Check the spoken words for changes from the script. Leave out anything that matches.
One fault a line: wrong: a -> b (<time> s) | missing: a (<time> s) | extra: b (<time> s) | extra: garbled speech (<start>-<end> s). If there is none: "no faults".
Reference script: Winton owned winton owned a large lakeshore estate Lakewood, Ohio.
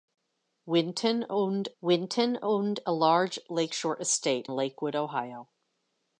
no faults